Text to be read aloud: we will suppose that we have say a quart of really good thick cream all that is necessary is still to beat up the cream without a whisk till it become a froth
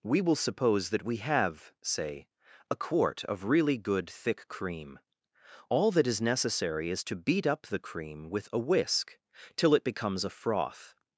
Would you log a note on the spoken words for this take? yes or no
yes